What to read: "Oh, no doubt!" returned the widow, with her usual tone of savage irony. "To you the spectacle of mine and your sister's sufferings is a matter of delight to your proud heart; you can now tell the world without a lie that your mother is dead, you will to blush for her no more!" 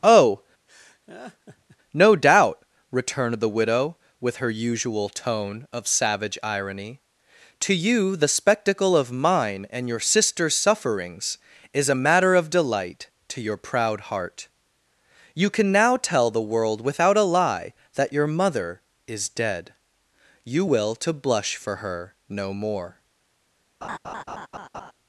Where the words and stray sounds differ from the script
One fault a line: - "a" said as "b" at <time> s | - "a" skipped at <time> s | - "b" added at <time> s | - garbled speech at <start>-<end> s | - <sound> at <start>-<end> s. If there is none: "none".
- laugh at 0.7-1.8 s
- laugh at 23.8-24.9 s